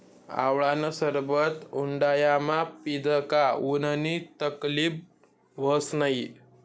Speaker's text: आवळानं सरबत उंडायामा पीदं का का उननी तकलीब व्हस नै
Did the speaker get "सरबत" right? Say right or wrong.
right